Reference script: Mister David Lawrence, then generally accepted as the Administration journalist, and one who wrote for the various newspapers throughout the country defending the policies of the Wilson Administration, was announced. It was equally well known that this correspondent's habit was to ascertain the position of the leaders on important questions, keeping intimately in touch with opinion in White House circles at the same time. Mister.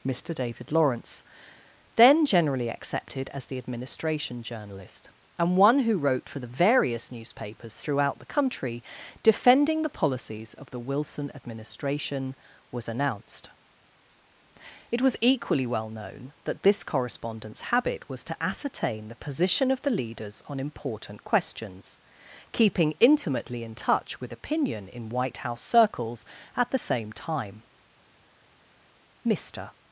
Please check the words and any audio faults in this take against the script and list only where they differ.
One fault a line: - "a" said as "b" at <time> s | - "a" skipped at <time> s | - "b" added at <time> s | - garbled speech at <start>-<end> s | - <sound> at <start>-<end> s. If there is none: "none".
none